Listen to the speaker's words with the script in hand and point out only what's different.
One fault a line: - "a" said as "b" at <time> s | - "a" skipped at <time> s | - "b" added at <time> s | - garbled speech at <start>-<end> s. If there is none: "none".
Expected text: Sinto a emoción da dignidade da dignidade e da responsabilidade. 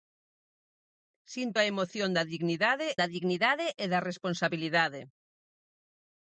none